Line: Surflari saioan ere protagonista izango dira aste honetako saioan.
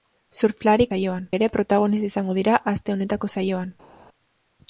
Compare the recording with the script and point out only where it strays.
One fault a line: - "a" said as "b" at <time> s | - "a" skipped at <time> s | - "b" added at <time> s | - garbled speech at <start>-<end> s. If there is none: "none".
none